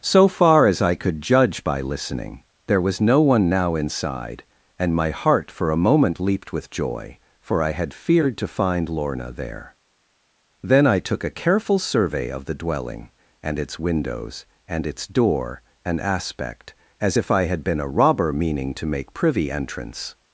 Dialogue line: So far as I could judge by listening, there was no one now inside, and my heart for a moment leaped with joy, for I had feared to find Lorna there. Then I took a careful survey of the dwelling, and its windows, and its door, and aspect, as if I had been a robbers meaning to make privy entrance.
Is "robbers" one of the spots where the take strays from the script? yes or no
yes